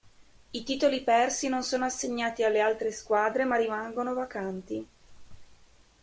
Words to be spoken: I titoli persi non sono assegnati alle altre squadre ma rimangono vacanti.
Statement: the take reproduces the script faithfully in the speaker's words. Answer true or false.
true